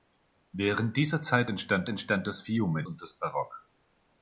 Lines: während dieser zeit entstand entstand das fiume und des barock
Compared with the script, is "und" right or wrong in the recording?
right